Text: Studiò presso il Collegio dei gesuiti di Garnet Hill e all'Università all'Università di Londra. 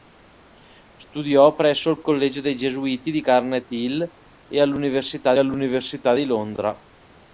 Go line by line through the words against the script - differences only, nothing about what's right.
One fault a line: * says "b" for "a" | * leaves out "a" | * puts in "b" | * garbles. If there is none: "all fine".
all fine